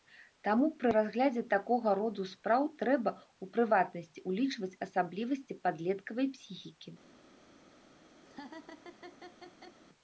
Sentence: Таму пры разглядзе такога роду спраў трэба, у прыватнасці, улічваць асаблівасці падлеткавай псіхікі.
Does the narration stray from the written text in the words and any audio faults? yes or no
yes